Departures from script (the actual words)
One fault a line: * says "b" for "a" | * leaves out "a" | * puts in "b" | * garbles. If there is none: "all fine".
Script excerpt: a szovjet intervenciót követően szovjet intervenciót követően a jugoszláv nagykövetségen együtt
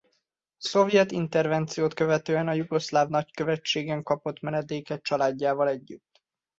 * says "a jugoszláv nagykövetségen kapott menedéket családjával" for "szovjet intervenciót követően a jugoszláv nagykövetségen"